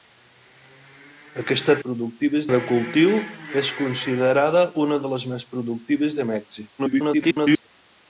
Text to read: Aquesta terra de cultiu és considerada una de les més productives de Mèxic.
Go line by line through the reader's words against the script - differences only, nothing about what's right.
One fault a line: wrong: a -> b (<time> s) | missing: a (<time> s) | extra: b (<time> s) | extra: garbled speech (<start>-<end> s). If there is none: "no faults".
wrong: terra -> productives (1.9 s)
extra: garbled speech (6.8-7.7 s)